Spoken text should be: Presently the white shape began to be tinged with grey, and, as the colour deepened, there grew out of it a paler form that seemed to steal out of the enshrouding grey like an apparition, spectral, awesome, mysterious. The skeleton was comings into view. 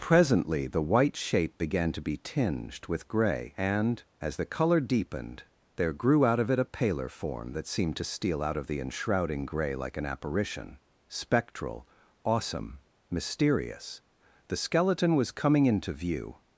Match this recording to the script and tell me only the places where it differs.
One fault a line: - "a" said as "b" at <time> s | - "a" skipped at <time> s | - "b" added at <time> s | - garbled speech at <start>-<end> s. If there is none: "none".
- "comings" said as "coming" at 15.3 s